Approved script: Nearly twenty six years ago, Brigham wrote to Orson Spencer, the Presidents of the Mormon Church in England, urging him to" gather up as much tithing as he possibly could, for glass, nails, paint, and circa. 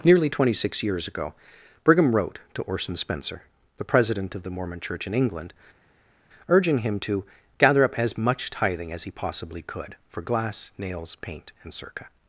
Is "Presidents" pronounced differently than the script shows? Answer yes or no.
yes